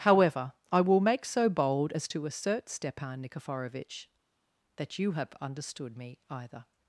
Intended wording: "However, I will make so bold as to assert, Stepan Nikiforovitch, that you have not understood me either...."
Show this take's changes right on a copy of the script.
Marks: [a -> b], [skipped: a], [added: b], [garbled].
"However, I will make so bold as to assert, Stepan Nikiforovitch, that you have [skipped: not] understood me either...."